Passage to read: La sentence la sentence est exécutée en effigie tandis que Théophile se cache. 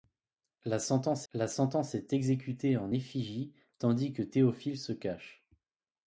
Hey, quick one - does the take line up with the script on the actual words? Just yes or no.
yes